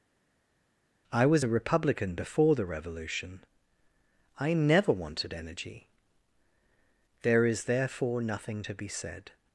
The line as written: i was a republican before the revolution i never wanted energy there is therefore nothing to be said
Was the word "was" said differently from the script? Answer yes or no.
no